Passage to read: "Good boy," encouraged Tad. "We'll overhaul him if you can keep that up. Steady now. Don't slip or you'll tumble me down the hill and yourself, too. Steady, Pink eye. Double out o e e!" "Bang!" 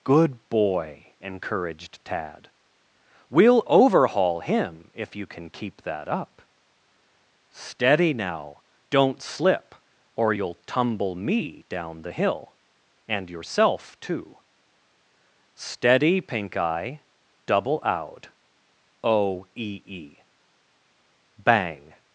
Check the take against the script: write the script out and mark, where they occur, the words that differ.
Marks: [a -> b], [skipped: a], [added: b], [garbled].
"Good boy," encouraged Tad. "We'll overhaul him if you can keep that up. Steady now. Don't slip or you'll tumble me down the hill and yourself, too. Steady, Pink eye. Double out o e e!" "Bang!"